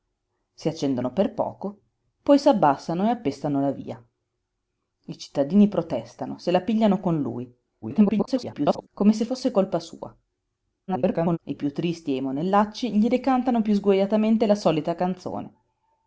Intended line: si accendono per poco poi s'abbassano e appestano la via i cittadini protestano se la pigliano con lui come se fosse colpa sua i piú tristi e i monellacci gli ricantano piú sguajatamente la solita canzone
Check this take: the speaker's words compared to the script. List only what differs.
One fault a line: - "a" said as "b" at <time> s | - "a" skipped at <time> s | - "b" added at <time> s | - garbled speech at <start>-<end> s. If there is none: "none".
- garbled speech at 7.8-8.9 s
- garbled speech at 10.9-11.4 s